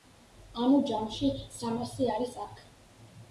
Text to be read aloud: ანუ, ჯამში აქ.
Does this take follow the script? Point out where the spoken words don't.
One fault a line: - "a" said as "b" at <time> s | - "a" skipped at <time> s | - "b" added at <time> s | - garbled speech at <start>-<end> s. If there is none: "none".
- "სამასი არის" added at 1.6 s